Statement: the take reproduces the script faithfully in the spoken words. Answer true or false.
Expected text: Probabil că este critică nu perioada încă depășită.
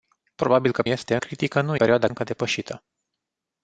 true